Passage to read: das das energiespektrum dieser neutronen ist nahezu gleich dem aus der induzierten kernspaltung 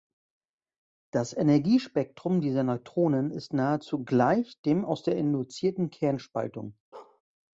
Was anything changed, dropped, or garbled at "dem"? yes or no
no